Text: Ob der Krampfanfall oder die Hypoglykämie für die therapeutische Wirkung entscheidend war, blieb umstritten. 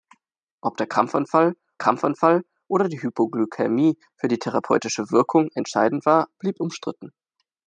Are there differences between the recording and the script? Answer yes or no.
yes